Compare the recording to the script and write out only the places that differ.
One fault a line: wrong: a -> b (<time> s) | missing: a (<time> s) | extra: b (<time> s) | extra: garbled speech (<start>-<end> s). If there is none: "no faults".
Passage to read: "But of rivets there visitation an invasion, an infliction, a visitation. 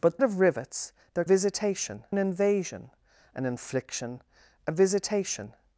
no faults